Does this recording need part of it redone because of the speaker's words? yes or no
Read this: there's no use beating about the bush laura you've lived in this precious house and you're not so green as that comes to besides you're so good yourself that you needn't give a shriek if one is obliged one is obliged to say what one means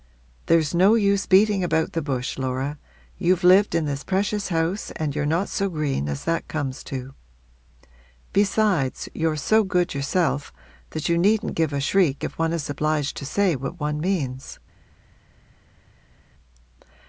yes